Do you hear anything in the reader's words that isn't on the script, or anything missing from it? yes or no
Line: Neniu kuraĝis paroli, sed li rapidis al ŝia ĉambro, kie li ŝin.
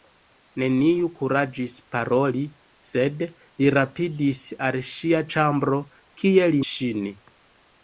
no